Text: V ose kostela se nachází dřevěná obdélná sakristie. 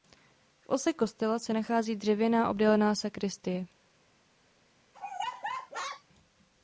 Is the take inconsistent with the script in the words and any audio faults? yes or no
yes